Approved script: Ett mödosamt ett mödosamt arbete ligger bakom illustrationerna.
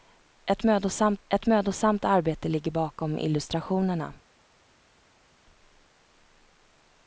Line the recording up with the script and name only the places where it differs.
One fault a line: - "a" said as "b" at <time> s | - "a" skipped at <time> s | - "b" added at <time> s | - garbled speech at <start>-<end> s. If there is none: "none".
none